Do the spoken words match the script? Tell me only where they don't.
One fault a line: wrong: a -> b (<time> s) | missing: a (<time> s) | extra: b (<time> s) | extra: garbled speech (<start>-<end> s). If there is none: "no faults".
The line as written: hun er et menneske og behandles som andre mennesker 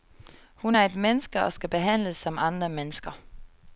extra: skal (1.5 s)